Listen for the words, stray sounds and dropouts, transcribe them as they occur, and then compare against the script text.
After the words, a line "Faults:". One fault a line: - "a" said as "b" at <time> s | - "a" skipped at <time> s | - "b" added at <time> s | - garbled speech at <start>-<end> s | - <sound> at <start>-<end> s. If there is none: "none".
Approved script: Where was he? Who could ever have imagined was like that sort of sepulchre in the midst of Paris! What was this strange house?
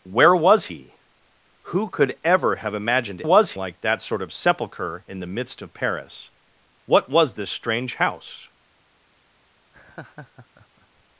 Where was he? Who could ever have imagined was like that sort of sepulchre in the midst of Paris! What was this strange house?
Faults:
- laugh at 9.7-11.0 s